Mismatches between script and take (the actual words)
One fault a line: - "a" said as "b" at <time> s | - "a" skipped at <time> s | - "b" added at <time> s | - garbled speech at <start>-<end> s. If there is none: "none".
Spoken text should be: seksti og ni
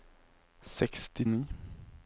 none